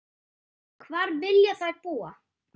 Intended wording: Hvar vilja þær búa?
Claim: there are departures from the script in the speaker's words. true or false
false